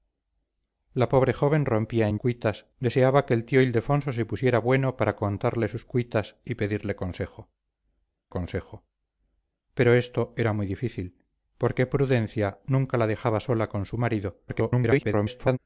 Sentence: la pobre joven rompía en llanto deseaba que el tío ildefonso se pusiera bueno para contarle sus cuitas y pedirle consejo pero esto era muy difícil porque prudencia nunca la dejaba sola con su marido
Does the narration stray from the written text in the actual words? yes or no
yes